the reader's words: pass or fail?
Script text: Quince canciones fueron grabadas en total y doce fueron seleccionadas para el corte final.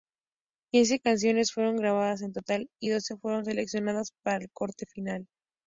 pass